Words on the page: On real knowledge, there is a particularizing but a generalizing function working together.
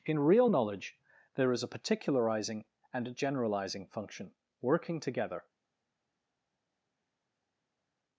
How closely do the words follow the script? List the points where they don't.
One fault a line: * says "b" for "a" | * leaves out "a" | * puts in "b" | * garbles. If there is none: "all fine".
* says "In" for "On"
* says "and" for "but"